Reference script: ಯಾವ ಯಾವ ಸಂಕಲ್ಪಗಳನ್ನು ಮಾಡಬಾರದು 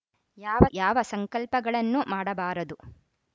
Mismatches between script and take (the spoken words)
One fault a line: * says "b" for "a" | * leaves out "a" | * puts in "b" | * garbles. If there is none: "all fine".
all fine